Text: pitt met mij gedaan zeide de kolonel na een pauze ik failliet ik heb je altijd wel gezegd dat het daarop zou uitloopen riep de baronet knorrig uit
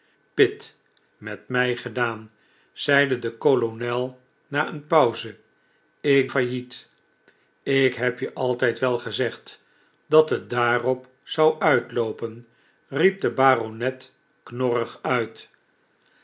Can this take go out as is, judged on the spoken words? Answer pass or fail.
pass